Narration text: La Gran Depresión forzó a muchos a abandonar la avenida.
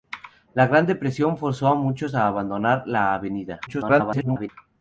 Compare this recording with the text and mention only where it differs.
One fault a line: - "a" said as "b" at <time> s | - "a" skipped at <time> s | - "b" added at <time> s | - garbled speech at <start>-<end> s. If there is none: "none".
- garbled speech at 3.7-4.5 s